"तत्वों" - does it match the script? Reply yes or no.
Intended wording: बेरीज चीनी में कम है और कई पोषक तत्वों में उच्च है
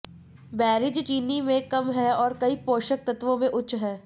yes